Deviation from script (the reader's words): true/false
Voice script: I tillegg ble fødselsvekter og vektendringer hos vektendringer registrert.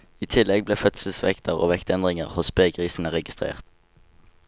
true